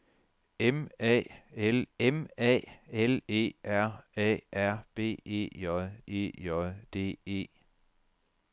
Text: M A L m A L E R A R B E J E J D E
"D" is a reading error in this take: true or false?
false